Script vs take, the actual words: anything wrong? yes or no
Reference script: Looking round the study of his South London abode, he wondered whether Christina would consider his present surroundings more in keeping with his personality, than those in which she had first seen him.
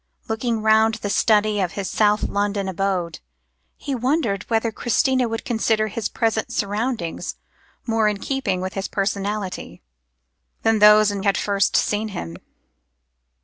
yes